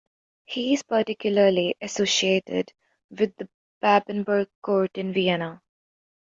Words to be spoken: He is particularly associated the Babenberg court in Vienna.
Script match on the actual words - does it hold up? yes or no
no